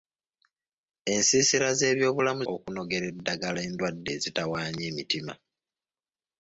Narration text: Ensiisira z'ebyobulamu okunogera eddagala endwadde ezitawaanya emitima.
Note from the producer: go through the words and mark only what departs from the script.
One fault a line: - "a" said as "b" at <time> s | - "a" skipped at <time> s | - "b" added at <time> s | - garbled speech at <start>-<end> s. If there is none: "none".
none